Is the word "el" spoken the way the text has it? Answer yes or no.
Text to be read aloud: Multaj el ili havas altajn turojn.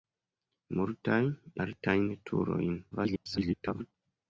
no